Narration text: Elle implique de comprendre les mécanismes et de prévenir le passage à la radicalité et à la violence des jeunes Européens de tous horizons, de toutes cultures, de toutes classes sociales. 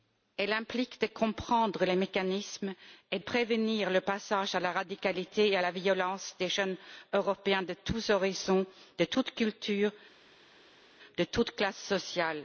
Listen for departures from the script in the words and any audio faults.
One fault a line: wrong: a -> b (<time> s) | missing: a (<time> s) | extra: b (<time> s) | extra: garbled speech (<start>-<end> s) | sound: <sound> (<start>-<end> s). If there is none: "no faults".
missing: de (3.2 s)